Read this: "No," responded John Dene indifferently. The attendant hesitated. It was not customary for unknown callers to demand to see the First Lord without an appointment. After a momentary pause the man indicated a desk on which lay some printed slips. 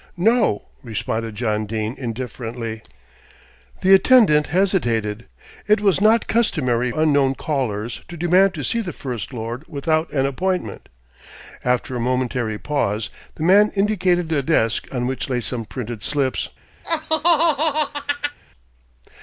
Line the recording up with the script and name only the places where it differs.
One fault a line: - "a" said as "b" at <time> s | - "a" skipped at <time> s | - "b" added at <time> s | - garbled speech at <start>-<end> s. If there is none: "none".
- "for" skipped at 6.9 s